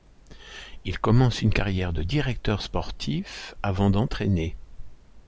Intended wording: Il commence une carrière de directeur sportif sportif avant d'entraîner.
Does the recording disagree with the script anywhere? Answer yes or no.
yes